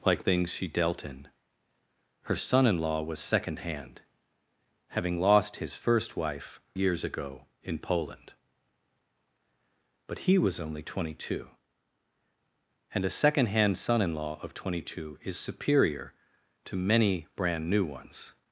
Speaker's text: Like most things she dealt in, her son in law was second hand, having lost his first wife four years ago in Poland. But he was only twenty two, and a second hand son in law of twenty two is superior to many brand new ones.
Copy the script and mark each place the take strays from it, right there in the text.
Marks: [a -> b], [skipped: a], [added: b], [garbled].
Like [skipped: most] things she dealt in, her son in law was second hand, having lost his first wife [skipped: four] years ago in Poland. But he was only twenty two, and a second hand son in law of twenty two is superior to many brand new ones.